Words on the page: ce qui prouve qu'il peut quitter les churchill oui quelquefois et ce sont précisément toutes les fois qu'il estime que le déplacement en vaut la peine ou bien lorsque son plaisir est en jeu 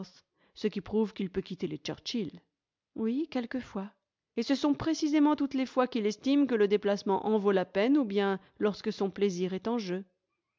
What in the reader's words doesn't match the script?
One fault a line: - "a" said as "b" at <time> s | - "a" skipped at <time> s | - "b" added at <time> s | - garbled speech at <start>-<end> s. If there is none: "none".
none